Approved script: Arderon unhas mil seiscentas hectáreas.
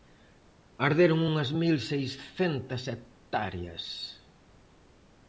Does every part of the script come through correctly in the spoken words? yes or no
yes